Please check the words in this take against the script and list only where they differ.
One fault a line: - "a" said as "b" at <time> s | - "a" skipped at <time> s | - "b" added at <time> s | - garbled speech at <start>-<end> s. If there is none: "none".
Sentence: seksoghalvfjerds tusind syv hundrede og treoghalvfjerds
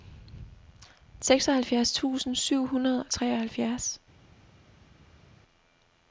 none